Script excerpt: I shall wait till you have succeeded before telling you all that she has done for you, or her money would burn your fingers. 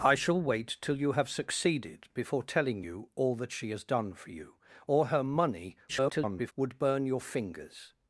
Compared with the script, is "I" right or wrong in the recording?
right